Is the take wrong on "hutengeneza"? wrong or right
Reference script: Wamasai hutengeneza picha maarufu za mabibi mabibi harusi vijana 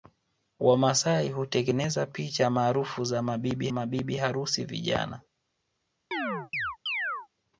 right